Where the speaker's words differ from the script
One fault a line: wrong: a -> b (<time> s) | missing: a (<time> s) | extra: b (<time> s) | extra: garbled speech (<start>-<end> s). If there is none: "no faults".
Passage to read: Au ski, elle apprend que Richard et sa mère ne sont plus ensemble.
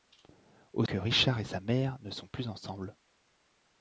missing: ski elle apprend (0.8 s)